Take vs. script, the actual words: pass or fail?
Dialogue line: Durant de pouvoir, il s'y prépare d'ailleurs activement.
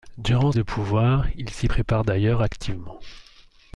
pass